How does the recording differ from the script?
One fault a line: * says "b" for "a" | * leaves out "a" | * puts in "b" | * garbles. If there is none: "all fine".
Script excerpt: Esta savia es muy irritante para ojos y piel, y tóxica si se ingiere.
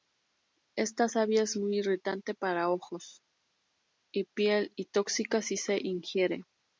all fine